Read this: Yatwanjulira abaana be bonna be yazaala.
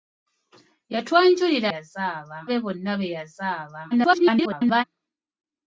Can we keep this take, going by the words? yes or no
no